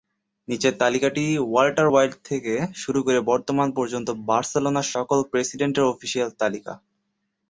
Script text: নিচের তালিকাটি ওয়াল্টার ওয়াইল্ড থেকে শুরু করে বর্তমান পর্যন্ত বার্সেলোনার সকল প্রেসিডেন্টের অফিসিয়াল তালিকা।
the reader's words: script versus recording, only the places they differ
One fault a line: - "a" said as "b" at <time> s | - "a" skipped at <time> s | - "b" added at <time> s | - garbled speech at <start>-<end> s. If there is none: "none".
none